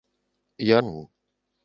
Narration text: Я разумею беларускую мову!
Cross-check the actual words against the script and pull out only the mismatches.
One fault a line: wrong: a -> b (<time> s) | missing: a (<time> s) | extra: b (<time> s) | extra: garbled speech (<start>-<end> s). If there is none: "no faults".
missing: разумею беларускую (0.8 s)